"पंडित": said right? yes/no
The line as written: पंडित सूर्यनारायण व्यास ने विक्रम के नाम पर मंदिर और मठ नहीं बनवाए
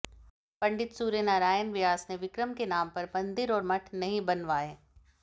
yes